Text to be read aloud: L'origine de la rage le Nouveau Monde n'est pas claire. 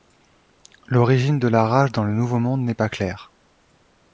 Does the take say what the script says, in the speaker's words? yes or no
no